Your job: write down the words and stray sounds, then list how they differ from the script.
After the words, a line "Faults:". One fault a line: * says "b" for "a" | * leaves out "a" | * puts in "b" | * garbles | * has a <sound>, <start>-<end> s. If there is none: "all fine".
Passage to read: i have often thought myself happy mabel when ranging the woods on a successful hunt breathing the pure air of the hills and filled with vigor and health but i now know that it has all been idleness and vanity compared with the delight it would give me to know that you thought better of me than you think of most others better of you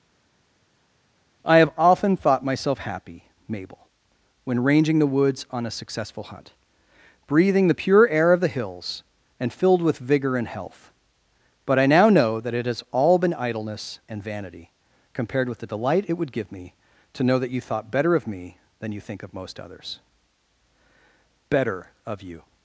i have often thought myself happy mabel when ranging the woods on a successful hunt breathing the pure air of the hills and filled with vigor and health but i now know that it has all been idleness and vanity compared with the delight it would give me to know that you thought better of me than you think of most others better of you
Faults:
all fine